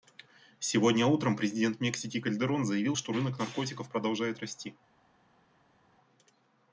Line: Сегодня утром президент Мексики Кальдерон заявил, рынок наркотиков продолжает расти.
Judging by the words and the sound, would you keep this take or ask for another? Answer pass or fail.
fail